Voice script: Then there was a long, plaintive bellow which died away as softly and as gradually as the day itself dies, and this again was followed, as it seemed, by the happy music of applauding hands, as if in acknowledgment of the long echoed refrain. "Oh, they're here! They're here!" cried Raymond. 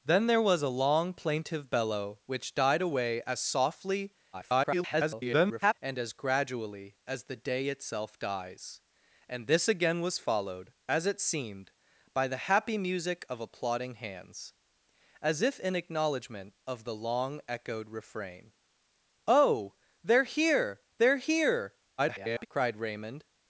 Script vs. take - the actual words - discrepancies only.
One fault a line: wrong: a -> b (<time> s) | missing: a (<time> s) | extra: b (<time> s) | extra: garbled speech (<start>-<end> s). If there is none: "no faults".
extra: garbled speech (4.3-5.7 s)
extra: garbled speech (22.0-22.5 s)